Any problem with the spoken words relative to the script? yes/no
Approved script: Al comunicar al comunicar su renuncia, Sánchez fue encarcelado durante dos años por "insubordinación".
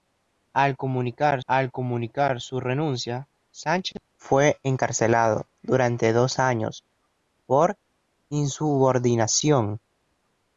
no